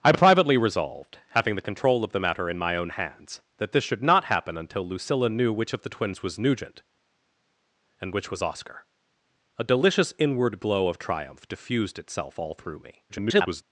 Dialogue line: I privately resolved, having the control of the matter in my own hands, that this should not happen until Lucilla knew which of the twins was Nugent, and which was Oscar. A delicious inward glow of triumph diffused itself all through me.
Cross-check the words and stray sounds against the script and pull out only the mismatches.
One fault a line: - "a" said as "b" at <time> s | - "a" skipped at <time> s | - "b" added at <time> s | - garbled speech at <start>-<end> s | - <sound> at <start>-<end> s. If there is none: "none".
- garbled speech at 13.1-13.6 s